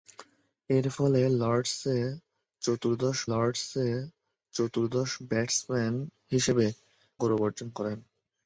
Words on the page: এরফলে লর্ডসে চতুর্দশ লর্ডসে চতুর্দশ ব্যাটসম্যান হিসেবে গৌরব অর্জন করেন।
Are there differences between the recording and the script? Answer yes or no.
no